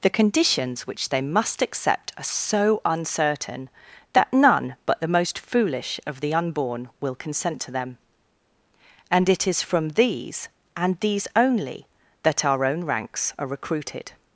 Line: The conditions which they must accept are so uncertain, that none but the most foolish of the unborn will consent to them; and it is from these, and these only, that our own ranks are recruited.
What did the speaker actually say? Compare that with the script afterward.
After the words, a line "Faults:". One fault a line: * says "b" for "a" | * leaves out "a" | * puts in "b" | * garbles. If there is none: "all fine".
The conditions which they must accept are so uncertain, that none but the most foolish of the unborn will consent to them; and it is from these, and these only, that our own ranks are recruited.
Faults:
all fine